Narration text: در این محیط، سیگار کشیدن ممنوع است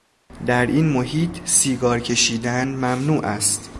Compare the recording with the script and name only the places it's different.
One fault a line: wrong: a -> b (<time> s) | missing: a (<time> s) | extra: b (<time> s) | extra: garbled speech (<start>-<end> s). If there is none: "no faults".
no faults